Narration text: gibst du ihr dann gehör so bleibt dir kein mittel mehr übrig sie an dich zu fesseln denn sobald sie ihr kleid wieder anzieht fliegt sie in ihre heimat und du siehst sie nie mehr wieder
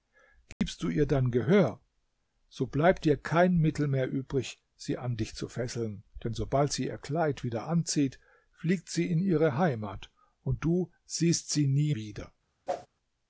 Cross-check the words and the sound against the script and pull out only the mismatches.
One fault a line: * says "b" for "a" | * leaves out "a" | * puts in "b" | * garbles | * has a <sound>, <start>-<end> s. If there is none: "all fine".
* has a dropout, 0.5-0.6 s
* leaves out "mehr"
* has a whoosh, 12.7-12.9 s